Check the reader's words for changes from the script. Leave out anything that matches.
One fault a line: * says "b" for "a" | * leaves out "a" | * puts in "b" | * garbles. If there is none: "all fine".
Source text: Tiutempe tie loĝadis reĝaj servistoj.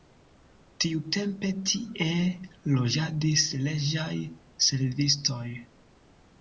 all fine